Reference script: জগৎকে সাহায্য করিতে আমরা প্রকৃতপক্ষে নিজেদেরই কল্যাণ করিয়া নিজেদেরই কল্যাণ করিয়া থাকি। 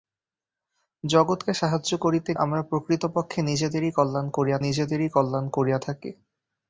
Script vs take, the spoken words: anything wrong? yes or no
no